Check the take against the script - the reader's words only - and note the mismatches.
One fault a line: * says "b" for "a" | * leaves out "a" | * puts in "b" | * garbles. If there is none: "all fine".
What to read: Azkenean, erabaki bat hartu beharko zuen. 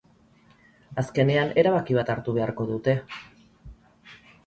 * says "dute" for "zuen"